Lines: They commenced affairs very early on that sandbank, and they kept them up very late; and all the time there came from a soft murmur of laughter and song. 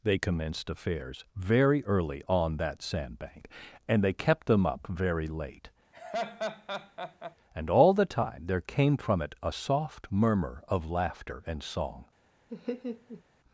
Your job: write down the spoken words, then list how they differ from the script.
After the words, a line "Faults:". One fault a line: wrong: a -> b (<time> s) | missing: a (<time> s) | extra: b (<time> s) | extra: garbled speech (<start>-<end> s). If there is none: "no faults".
They commenced affairs very early on that sandbank, and they kept them up very late; and all the time there came from it a soft murmur of laughter and song.
Faults:
extra: it (9.2 s)